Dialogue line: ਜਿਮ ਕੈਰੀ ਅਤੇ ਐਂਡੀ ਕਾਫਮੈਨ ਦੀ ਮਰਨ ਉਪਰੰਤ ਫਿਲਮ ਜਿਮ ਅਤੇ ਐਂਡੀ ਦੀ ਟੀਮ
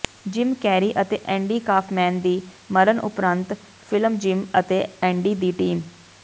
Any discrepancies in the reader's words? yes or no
no